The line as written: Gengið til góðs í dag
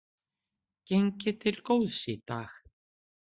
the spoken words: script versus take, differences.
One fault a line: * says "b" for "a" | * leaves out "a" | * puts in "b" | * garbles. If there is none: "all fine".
all fine